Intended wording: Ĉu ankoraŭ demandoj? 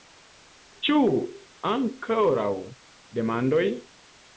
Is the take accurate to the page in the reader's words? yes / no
yes